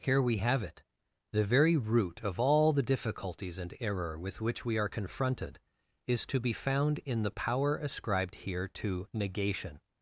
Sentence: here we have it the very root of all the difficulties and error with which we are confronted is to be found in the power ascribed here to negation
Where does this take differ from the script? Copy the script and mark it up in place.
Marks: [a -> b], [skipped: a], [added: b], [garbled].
here we have it the very root of all the difficulties and error with which we are confronted is to be found in the power ascribed here to negation